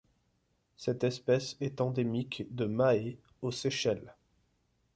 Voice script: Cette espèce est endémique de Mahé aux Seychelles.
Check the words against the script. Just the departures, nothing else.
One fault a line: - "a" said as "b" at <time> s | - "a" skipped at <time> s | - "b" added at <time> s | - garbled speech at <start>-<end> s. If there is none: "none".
none